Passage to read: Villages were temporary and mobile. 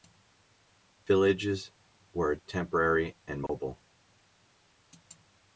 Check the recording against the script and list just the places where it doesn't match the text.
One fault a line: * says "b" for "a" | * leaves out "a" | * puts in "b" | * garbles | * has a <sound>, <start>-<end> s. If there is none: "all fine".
* has a dropout, 3.5-3.5 s